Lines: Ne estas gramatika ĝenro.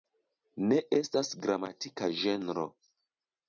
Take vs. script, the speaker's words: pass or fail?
pass